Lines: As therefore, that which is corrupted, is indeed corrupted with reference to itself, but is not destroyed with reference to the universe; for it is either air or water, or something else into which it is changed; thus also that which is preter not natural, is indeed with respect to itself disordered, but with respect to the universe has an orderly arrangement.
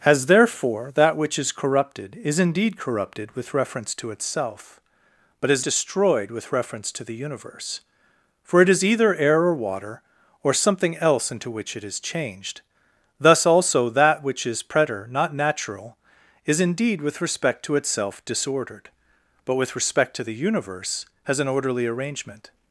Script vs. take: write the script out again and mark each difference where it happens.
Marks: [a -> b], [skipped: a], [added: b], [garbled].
As therefore, that which is corrupted, is indeed corrupted with reference to itself, but is [skipped: not] destroyed with reference to the universe; for it is either air or water, or something else into which it is changed; thus also that which is preter not natural, is indeed with respect to itself disordered, but with respect to the universe has an orderly arrangement.